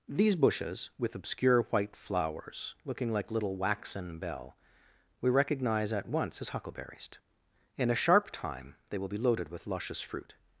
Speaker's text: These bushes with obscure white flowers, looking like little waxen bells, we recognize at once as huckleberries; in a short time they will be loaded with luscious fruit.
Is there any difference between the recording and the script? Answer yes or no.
yes